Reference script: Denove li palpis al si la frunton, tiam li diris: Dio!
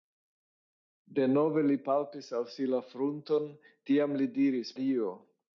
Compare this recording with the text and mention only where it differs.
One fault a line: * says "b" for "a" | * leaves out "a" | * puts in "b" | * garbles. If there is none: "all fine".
all fine